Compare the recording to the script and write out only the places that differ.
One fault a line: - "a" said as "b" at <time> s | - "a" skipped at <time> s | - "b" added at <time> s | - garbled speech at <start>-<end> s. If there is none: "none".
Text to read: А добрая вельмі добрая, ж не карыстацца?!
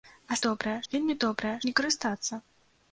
none